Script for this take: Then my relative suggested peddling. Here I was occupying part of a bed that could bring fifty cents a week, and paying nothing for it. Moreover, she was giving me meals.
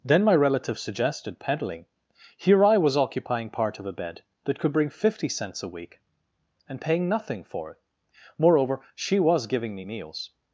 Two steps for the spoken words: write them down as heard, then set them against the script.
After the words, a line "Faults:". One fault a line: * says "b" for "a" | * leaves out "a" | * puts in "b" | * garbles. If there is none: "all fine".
Then my relative suggested peddling. Here I was occupying part of a bed that could bring fifty cents a week, and paying nothing for it. Moreover, she was giving me meals.
Faults:
all fine